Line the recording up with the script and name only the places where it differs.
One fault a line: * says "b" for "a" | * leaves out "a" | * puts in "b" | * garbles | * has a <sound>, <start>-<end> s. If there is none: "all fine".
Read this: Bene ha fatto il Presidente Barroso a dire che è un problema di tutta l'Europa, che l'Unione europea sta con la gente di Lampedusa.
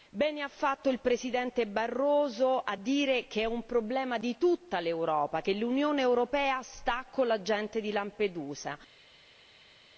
all fine